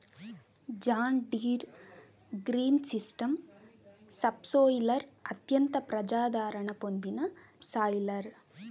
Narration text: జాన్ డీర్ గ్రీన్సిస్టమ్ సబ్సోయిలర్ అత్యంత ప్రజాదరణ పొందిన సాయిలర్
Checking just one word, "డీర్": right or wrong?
right